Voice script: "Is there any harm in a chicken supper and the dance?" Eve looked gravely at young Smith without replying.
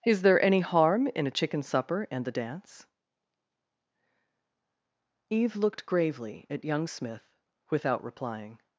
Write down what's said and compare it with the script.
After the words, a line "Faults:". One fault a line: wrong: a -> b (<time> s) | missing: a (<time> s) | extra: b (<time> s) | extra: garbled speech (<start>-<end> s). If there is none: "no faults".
"Is there any harm in a chicken supper and the dance?" Eve looked gravely at young Smith without replying.
Faults:
no faults